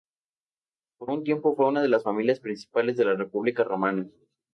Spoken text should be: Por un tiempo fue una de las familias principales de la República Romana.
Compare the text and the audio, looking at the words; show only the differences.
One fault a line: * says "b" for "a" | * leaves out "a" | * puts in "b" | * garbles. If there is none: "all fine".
all fine